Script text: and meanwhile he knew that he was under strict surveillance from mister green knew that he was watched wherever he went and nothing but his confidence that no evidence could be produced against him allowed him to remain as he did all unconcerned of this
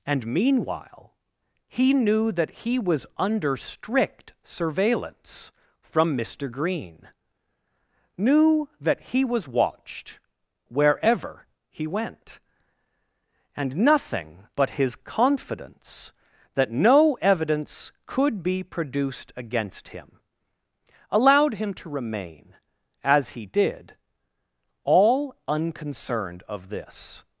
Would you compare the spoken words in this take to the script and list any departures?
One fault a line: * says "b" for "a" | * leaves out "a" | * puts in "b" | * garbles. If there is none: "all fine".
all fine